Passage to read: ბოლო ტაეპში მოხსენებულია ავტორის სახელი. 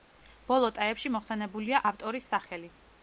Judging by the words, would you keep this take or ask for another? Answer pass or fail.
pass